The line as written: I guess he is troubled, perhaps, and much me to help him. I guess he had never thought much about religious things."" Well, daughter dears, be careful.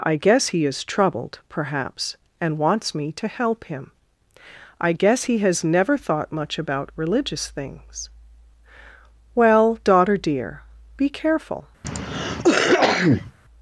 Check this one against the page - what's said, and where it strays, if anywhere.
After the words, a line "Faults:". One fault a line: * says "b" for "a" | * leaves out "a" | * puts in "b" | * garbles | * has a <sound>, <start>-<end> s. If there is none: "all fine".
I guess he is troubled, perhaps, and wants me to help him. I guess he has never thought much about religious things."" Well, daughter dear, be careful.
Faults:
* says "wants" for "much"
* says "has" for "had"
* says "dear" for "dears"
* has a cough, 11.8-13.3 s